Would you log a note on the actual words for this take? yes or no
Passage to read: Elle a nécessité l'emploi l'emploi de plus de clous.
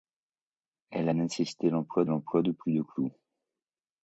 no